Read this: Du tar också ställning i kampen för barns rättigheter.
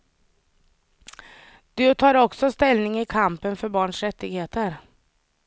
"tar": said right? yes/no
yes